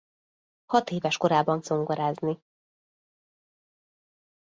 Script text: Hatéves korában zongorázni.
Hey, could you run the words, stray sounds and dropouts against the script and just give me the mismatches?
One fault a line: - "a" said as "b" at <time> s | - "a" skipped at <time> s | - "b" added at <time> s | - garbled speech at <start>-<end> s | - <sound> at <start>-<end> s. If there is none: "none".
none